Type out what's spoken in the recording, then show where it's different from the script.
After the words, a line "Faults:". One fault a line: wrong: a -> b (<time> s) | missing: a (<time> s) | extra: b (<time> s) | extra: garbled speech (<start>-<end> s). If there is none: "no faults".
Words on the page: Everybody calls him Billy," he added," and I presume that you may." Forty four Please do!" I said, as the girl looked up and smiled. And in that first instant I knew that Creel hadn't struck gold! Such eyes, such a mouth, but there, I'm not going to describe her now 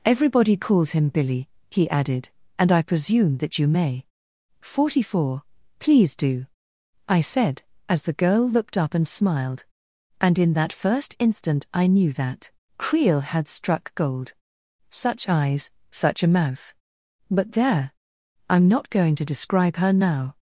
Everybody calls him Billy," he added," and I presume that you may." Forty four Please do!" I said, as the girl looked up and smiled. And in that first instant I knew that Creel had struck gold! Such eyes, such a mouth, but there, I'm not going to describe her now
Faults:
wrong: hadn't -> had (13.2 s)